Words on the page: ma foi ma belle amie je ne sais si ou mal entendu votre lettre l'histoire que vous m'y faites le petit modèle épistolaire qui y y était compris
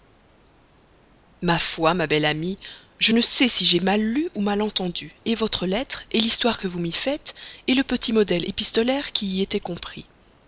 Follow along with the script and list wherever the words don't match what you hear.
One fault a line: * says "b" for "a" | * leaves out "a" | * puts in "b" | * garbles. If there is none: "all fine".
* puts in "j'ai mal lu"
* leaves out "y"